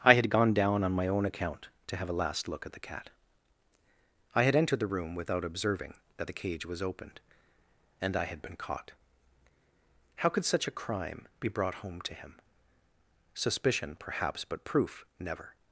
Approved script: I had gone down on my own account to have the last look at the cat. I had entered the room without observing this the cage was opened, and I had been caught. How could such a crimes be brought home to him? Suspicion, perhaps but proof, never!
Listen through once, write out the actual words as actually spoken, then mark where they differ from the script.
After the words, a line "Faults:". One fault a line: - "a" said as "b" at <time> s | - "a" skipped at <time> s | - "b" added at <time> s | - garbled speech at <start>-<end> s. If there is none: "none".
I had gone down on my own account to have a last look at the cat. I had entered the room without observing that the cage was opened, and I had been caught. How could such a crime be brought home to him? Suspicion, perhaps but proof, never!
Faults:
- "the" said as "a" at 2.1 s
- "this" said as "that" at 6.2 s
- "crimes" said as "crime" at 10.7 s